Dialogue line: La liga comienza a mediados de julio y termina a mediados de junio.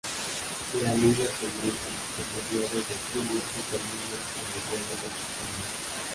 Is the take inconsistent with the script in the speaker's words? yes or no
yes